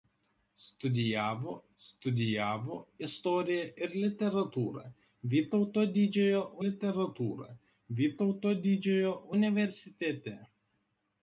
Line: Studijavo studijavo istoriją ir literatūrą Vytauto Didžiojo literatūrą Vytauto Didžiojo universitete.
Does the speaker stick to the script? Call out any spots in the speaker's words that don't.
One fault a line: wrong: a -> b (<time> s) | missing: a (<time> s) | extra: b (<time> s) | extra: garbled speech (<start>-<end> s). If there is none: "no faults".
no faults